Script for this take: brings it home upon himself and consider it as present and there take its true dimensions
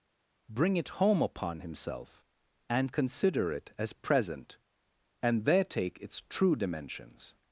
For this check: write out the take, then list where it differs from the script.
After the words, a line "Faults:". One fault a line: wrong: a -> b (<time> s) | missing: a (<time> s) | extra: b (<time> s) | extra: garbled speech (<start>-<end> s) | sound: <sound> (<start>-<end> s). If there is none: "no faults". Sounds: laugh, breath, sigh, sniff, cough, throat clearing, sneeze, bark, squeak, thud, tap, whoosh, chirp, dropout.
bring it home upon himself and consider it as present and there take its true dimensions
Faults:
wrong: brings -> bring (0.5 s)